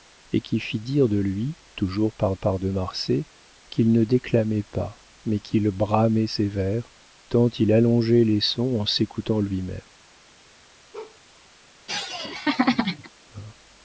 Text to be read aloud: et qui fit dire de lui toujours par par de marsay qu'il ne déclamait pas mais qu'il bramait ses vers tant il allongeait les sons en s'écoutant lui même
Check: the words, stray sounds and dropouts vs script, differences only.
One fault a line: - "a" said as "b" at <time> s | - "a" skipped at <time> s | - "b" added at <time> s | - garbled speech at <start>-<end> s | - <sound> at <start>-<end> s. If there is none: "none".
- bark at 10.9-11.2 s
- laugh at 11.9-13.1 s